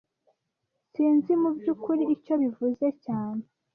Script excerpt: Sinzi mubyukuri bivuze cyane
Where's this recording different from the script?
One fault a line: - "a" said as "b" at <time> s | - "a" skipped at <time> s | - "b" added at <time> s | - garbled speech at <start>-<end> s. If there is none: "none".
- "icyo" added at 2.1 s